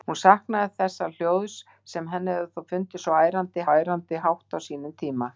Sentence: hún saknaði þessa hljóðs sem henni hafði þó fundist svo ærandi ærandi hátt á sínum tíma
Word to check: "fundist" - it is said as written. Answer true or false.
true